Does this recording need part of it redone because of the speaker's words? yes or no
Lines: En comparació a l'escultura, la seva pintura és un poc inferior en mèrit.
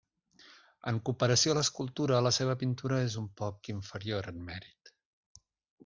no